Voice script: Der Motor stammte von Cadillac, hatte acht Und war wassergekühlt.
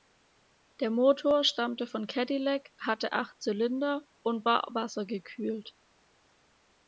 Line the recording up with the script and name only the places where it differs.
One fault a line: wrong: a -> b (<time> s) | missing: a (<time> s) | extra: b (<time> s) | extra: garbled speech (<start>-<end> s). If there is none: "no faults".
extra: Zylinder (3.4 s)